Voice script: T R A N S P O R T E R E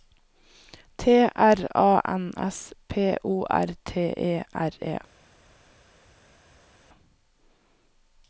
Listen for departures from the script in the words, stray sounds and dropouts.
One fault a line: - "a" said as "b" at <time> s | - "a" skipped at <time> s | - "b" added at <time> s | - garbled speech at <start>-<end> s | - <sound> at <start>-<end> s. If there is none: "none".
none